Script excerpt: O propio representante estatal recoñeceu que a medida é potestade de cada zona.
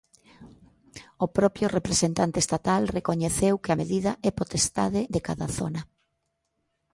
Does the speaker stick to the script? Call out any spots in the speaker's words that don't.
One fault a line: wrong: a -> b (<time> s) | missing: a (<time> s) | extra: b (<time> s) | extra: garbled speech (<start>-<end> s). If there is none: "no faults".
no faults